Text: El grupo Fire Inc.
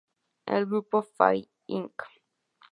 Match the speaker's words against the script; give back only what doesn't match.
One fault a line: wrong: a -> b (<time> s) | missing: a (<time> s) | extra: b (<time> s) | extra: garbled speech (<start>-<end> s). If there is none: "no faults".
no faults